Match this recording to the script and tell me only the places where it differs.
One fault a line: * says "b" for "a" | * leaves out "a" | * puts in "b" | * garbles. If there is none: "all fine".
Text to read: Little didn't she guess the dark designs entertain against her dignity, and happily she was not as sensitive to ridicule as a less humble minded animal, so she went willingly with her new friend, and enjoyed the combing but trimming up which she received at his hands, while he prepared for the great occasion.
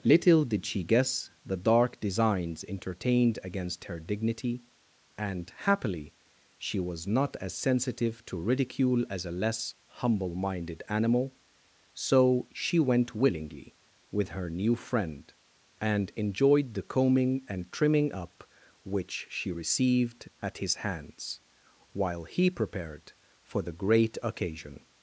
* says "did" for "didn't"
* says "entertained" for "entertain"
* says "and" for "but"